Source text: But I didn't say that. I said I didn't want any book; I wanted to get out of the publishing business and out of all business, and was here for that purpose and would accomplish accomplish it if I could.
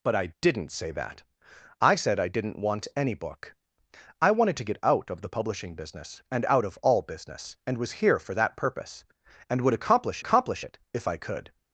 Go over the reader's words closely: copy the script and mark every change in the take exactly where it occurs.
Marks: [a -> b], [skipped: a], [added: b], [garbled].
But I didn't say that. I said I didn't want any book; I wanted to get out of the publishing business and out of all business, and was here for that purpose and would accomplish accomplish it if I could.